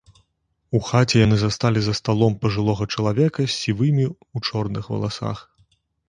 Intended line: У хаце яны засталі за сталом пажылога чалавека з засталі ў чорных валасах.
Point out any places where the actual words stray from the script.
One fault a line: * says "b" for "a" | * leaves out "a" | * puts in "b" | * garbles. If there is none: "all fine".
* says "сівымі" for "засталі"